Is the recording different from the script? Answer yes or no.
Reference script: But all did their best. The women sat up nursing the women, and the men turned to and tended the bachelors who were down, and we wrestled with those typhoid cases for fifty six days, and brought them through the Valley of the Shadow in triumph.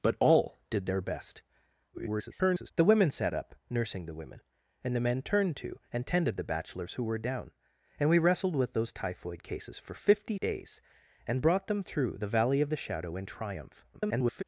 yes